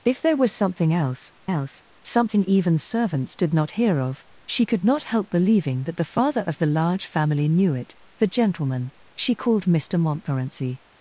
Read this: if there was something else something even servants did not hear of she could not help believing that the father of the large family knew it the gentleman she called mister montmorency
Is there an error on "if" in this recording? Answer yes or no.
no